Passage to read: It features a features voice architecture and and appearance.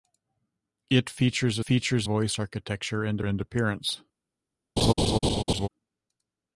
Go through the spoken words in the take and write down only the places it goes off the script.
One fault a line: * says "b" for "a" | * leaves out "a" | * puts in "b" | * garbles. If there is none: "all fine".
all fine